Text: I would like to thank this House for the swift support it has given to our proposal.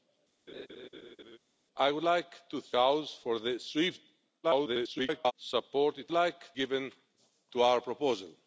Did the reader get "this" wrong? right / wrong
wrong